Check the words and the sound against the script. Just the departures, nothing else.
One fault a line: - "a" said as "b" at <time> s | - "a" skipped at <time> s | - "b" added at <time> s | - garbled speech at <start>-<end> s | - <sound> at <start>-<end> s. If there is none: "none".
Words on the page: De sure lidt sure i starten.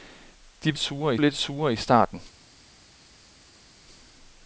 none